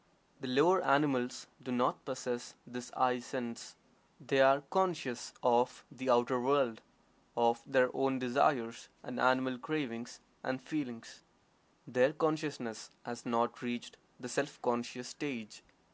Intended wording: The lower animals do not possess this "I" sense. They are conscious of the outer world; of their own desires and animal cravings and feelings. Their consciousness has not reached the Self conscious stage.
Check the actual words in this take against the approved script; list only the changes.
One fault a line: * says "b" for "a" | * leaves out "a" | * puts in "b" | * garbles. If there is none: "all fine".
all fine